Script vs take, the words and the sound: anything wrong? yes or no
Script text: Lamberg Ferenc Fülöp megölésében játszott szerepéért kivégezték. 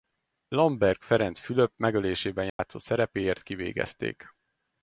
yes